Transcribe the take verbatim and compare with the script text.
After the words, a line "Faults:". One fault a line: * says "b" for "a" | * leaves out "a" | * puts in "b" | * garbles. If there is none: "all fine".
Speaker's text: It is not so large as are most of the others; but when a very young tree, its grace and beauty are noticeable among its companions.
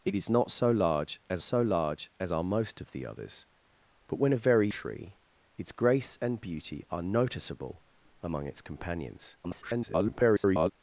It is not so large as so large as are most of the others; but when a very tree, its grace and beauty are noticeable among its companions. [garbled]
Faults:
* puts in "so large as"
* leaves out "young"
* garbles